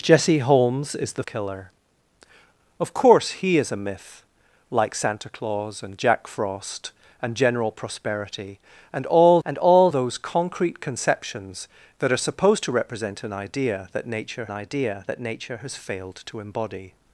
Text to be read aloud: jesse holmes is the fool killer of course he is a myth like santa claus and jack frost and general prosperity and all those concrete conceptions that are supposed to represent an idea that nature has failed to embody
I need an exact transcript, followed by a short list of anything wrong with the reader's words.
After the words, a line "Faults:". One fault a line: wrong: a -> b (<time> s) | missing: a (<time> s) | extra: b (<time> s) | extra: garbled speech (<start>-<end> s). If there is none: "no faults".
jesse holmes is the killer of course he is a myth like santa claus and jack frost and general prosperity and all and all those concrete conceptions that are supposed to represent an idea that nature idea that nature has failed to embody
Faults:
missing: fool (1.2 s)
extra: and all (9.4 s)
extra: idea that nature (14.5 s)